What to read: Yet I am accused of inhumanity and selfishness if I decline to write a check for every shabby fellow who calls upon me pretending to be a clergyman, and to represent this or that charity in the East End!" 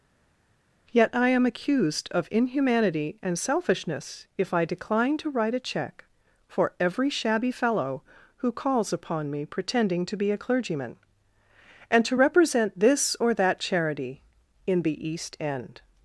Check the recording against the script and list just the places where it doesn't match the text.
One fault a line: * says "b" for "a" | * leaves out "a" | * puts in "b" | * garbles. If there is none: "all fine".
all fine